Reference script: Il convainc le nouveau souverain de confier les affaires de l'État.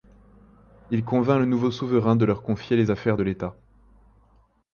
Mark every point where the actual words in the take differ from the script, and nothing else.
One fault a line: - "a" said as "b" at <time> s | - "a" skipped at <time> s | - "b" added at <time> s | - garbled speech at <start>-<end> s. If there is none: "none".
- "leur" added at 2.2 s